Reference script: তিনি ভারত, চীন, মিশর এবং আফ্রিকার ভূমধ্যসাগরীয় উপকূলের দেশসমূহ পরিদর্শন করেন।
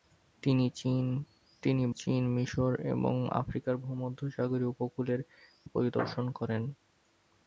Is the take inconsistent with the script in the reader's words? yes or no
yes